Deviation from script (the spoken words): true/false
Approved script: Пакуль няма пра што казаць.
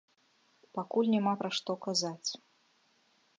false